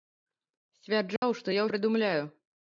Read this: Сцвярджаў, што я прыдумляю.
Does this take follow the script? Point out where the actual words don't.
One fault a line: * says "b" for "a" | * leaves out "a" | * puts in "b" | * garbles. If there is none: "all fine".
all fine